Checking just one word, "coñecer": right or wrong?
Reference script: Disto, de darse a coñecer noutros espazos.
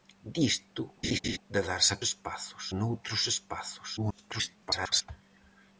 wrong